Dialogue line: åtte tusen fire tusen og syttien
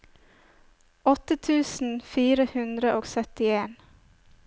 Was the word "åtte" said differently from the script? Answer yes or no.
no